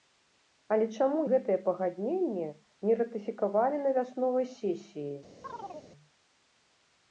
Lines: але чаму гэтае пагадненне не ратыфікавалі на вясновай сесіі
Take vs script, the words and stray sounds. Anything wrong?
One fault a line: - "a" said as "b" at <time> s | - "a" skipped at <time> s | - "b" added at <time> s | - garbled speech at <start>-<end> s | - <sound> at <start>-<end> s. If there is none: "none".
- chirp at 5.4-5.9 s